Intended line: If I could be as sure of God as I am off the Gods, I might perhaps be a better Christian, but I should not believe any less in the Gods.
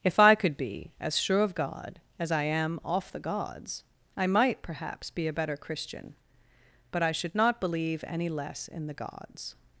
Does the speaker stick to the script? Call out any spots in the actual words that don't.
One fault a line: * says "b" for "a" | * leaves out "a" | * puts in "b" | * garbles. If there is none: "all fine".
all fine